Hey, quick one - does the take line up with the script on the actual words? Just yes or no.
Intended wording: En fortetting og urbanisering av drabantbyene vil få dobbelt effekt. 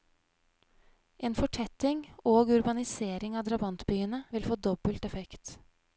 yes